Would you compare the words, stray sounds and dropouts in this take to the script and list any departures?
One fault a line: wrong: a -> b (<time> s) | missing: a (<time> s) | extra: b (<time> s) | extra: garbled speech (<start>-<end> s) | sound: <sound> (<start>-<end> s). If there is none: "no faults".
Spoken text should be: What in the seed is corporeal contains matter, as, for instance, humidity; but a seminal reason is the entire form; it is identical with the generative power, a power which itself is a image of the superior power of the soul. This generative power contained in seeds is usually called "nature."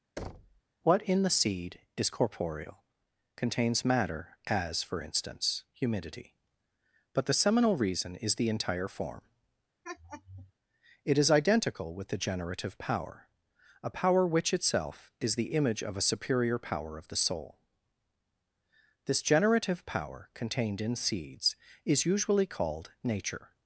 sound: thud (0.2-0.6 s)
wrong: a -> the (7.3 s)
sound: laugh (9.8-10.5 s)
wrong: a -> the (15.4 s)
wrong: the -> a (16.0 s)